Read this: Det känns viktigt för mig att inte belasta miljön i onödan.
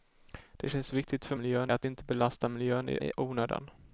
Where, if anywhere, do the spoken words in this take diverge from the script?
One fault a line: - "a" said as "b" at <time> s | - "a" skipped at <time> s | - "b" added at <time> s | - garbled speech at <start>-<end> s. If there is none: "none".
- "mig" said as "miljön" at 1.3 s
- "i" added at 3.0 s